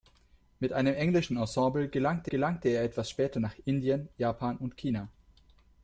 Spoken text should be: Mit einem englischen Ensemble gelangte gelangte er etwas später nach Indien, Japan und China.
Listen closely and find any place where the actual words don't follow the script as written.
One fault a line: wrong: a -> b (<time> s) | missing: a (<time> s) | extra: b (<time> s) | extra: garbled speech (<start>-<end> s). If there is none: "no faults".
no faults